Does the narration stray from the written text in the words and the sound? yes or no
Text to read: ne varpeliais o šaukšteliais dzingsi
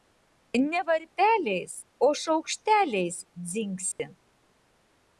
yes